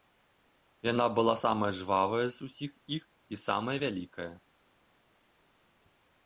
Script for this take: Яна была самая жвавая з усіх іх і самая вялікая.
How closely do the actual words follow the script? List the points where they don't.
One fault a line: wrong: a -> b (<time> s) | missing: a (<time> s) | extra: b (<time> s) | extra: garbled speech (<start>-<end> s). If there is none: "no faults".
no faults